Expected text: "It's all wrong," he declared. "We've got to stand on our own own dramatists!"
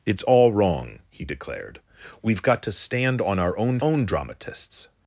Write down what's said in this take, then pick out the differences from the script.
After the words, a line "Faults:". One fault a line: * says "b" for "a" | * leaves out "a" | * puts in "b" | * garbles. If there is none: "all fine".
"It's all wrong," he declared. "We've got to stand on our own own dramatists!"
Faults:
all fine